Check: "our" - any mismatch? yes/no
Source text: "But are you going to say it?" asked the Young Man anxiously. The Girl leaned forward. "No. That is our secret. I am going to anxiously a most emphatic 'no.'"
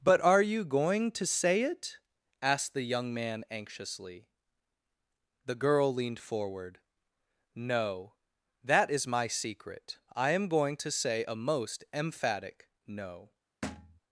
yes